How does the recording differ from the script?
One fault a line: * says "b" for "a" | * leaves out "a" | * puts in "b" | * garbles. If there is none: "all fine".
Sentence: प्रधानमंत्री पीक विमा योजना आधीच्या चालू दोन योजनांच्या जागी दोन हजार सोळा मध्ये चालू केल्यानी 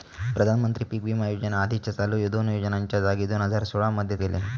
* leaves out "चालू"